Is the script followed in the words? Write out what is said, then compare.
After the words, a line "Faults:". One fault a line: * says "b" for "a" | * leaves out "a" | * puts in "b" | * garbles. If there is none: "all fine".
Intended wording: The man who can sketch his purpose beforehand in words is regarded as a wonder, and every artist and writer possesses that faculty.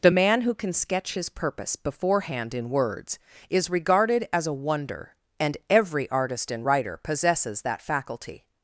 The man who can sketch his purpose beforehand in words is regarded as a wonder, and every artist and writer possesses that faculty.
Faults:
all fine